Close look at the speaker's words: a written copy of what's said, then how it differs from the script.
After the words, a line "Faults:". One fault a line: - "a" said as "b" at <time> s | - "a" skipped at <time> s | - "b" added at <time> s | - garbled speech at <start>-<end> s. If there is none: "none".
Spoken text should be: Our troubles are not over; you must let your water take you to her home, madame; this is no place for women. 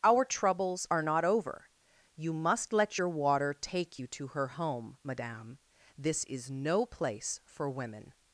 Our troubles are not over; you must let your water take you to her home, madame; this is no place for women.
Faults:
none